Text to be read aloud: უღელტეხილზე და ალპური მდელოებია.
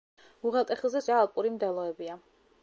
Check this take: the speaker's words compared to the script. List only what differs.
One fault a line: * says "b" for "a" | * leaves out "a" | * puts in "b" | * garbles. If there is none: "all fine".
all fine